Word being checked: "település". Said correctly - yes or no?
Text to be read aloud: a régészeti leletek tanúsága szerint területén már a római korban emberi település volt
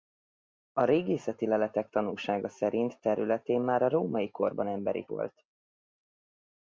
no